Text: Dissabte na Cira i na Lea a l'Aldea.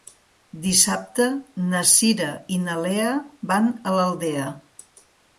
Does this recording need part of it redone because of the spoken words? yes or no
yes